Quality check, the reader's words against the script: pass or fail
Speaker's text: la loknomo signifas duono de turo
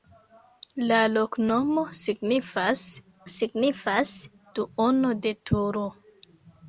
fail